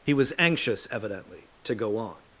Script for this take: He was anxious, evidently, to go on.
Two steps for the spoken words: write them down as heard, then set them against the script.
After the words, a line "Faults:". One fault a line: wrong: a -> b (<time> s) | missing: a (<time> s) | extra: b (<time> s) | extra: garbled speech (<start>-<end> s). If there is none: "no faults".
He was anxious, evidently, to go on.
Faults:
no faults